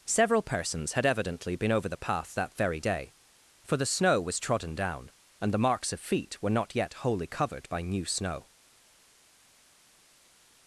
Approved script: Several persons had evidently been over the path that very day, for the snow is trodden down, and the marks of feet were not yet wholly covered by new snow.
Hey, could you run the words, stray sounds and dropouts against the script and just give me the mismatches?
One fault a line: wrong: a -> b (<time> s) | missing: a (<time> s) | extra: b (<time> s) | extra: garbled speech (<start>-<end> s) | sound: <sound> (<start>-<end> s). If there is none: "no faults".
wrong: is -> was (4.2 s)